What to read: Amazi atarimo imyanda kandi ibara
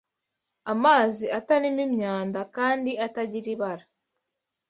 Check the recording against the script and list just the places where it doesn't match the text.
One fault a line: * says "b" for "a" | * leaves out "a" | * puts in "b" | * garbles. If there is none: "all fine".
* puts in "atagira"